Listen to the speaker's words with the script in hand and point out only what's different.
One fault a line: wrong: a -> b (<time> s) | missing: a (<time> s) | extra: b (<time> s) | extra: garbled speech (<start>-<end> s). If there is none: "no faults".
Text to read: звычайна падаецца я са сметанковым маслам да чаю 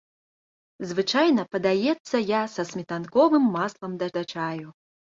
extra: да (4.2 s)